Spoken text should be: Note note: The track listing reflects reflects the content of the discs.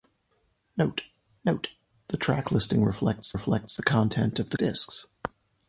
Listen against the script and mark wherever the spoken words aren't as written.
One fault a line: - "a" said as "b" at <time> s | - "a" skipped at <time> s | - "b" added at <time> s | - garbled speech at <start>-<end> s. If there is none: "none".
none